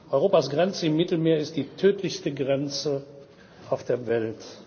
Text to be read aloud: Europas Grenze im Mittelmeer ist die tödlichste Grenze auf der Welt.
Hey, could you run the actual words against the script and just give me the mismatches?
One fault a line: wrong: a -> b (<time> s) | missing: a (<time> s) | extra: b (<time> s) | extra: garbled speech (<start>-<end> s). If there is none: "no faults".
no faults